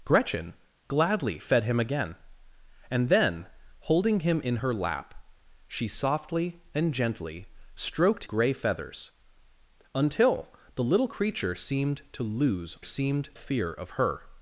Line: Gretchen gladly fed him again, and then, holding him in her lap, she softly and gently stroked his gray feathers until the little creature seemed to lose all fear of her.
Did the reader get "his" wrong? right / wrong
wrong